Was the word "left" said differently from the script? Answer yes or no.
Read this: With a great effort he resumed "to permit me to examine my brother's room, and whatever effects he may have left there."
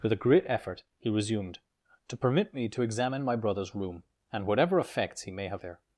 yes